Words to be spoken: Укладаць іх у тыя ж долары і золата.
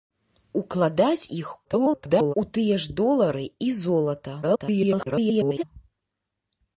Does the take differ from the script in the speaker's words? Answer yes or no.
yes